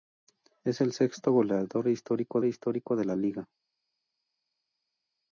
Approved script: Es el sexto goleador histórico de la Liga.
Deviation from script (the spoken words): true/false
true